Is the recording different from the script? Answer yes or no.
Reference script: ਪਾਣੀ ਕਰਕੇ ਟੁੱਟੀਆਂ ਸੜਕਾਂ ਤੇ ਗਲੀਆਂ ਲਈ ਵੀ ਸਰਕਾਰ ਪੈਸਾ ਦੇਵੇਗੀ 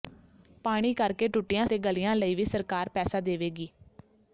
yes